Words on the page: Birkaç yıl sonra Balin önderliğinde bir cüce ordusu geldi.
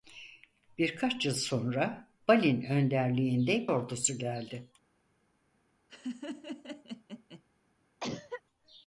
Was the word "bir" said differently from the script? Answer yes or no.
yes